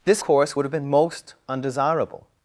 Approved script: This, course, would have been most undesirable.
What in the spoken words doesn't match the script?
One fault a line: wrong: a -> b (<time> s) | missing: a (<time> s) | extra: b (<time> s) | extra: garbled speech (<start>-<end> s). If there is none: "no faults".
no faults